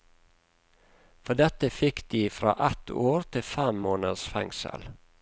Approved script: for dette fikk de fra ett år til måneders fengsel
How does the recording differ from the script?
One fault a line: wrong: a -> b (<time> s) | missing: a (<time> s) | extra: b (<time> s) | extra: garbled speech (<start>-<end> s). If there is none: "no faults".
extra: fem (3.5 s)